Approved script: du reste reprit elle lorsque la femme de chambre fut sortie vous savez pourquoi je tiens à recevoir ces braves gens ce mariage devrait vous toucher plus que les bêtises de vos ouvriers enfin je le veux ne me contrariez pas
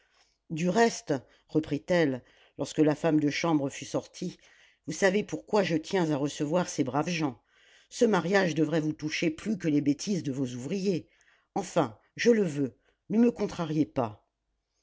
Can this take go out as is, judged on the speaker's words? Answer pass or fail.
pass